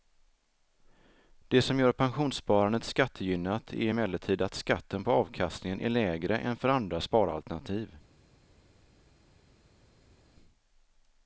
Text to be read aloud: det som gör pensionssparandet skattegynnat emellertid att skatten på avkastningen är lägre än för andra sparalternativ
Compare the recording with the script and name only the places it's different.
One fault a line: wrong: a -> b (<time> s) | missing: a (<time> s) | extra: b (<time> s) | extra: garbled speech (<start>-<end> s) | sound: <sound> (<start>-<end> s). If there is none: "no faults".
extra: är (3.7 s)